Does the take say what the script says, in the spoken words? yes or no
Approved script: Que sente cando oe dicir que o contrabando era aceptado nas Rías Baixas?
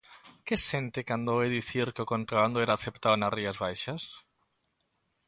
yes